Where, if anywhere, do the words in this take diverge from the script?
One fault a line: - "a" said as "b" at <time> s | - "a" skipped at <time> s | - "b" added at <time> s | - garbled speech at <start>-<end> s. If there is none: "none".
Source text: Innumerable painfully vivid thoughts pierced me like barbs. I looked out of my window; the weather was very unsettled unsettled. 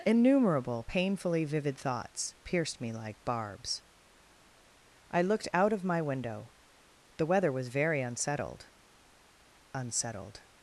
none